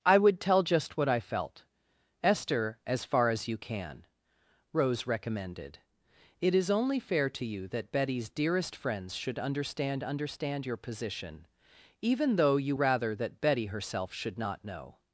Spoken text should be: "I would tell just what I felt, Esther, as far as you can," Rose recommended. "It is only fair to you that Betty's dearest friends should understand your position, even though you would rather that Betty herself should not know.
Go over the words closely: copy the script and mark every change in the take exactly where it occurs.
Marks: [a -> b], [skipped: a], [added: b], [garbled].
"I would tell just what I felt, Esther, as far as you can," Rose recommended. "It is only fair to you that Betty's dearest friends should understand [added: understand] your position, even though you [skipped: would] rather that Betty herself should not know.